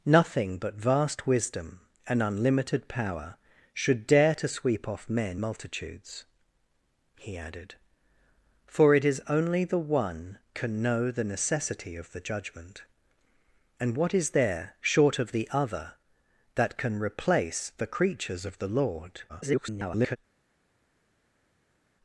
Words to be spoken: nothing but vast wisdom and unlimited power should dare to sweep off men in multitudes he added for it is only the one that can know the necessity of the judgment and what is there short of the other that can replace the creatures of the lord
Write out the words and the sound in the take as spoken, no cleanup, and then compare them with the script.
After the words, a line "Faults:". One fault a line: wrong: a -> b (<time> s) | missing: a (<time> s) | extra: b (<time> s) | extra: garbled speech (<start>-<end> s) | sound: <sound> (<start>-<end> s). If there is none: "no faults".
nothing but vast wisdom and unlimited power should dare to sweep off men multitudes he added for it is only the one can know the necessity of the judgment and what is there short of the other that can replace the creatures of the lord [garbled]
Faults:
missing: in (5.4 s)
missing: that (10.4 s)
extra: garbled speech (19.3-20.2 s)